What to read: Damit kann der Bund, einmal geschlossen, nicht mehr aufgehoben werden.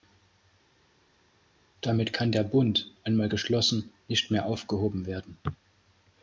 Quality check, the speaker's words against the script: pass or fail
pass